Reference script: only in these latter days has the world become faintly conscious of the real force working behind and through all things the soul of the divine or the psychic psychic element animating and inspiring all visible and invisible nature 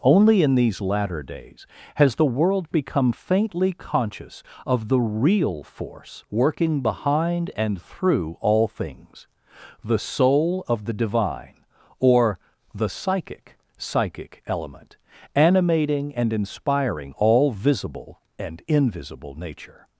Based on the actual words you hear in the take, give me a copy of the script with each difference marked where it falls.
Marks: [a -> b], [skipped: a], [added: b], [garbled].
only in these latter days has the world become faintly conscious of the real force working behind and through all things the soul of the divine or the psychic psychic element animating and inspiring all visible and invisible nature